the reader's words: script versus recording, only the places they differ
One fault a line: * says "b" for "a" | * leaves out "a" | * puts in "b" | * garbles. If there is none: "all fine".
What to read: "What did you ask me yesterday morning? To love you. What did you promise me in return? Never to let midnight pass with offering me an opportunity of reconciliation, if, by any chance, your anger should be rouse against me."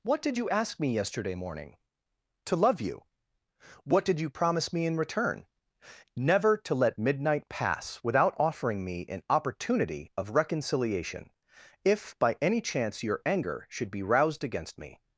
* says "without" for "with"
* says "roused" for "rouse"